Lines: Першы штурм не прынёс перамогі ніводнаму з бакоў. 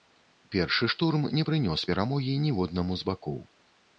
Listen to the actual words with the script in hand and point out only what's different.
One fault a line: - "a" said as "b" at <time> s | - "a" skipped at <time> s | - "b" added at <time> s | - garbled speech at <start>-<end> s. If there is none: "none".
none